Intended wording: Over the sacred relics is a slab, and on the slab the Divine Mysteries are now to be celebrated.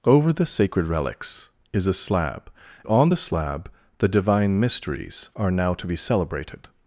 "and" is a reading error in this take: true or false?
true